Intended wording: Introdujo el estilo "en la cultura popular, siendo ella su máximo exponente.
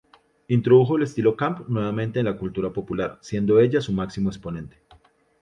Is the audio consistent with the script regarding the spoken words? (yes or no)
no